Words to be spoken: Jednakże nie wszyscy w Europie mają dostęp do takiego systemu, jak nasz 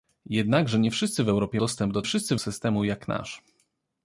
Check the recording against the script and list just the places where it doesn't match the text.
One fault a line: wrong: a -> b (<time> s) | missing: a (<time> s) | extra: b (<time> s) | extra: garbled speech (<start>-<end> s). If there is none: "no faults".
missing: mają (1.6 s)
wrong: takiego -> wszyscy (2.0 s)